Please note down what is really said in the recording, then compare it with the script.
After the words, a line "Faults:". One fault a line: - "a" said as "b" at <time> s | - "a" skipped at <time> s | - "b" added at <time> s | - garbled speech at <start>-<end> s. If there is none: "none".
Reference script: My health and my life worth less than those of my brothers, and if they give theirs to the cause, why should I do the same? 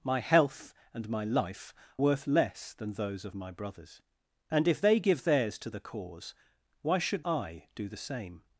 My health and my life worth less than those of my brothers, and if they give theirs to the cause, why should I do the same?
Faults:
none